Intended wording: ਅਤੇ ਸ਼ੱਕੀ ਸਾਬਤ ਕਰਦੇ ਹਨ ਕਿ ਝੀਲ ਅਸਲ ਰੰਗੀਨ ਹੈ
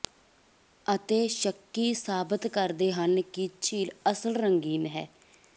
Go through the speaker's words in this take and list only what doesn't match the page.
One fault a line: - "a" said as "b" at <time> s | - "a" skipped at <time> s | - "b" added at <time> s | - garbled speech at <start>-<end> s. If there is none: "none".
none